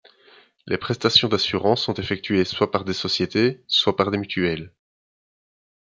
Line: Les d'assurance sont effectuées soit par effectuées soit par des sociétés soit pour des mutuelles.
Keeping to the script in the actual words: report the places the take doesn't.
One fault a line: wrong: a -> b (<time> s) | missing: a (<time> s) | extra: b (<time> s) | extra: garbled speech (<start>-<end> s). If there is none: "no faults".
extra: prestations (0.8 s)
missing: effectuées soit par (2.9 s)
wrong: pour -> par (4.0 s)